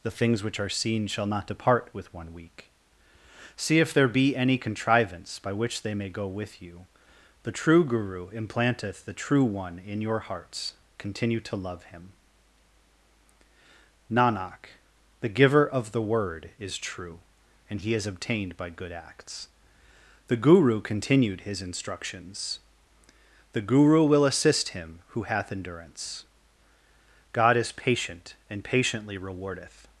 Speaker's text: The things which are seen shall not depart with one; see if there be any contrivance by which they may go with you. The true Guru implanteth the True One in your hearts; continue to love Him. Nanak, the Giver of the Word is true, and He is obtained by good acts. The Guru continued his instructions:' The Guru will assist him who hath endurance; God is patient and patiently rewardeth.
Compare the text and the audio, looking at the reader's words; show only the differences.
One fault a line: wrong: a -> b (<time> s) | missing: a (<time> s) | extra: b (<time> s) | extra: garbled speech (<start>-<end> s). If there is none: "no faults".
extra: week (2.3 s)